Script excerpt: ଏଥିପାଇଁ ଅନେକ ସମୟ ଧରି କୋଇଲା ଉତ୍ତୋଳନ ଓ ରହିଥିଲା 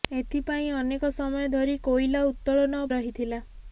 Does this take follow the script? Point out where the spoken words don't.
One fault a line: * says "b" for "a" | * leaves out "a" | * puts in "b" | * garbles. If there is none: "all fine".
all fine